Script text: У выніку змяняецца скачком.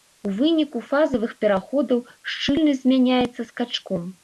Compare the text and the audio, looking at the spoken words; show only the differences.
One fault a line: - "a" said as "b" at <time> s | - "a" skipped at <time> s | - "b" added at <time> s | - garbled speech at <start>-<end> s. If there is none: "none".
- "фазавых пераходаў шчыльнасць" added at 0.9 s